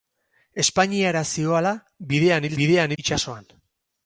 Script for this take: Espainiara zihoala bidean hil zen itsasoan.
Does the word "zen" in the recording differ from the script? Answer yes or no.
yes